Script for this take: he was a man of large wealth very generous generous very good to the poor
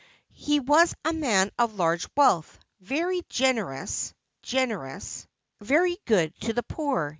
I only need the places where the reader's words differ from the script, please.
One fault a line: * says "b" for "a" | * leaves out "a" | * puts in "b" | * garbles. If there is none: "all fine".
all fine